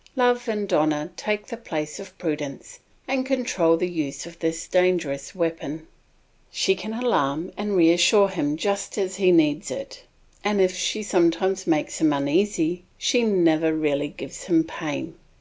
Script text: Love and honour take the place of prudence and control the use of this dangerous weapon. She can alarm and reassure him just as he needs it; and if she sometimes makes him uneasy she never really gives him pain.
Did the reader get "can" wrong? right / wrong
right